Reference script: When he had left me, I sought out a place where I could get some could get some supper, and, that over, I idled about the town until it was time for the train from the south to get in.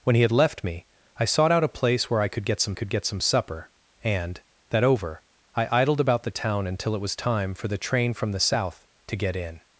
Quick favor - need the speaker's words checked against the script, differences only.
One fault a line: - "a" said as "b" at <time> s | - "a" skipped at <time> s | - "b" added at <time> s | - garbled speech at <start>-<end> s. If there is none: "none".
none